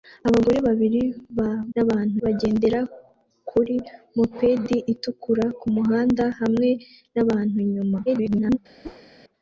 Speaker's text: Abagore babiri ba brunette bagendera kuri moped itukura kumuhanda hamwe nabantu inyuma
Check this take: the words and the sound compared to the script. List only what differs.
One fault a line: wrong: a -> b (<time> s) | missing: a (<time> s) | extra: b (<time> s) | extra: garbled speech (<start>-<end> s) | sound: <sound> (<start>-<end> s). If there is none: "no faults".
wrong: brunette -> nabantu (1.7 s)
extra: garbled speech (8.1-8.6 s)
sound: whoosh (8.8-9.1 s)